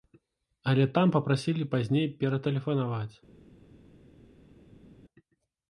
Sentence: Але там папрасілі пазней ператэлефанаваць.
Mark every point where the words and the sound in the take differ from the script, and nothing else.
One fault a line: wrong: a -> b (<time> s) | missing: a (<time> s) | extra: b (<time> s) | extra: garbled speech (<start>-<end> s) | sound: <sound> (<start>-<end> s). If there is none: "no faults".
no faults